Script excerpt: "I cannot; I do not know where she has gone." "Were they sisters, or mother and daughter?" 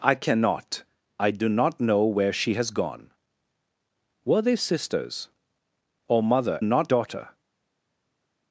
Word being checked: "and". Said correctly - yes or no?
no